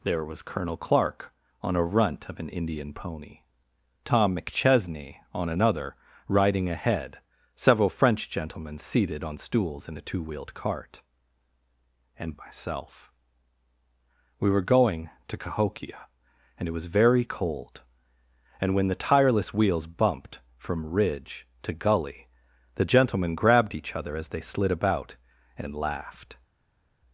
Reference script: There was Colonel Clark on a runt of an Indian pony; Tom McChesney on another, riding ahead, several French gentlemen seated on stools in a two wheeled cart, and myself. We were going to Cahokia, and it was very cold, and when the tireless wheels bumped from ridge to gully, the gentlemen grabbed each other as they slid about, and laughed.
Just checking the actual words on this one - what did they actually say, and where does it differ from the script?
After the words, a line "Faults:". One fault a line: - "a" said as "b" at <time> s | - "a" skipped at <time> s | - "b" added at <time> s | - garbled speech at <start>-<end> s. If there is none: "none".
There was Colonel Clark on a runt of an Indian pony; Tom McChesney on another, riding ahead, several French gentlemen seated on stools in a two wheeled cart, and myself. We were going to Cahokia, and it was very cold, and when the tireless wheels bumped from ridge to gully, the gentlemen grabbed each other as they slid about, and laughed.
Faults:
none